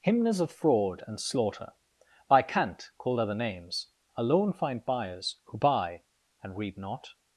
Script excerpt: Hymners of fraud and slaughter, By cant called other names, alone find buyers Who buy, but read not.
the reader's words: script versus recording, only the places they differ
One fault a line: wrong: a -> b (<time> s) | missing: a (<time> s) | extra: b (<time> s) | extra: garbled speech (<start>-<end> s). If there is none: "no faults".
wrong: but -> and (6.4 s)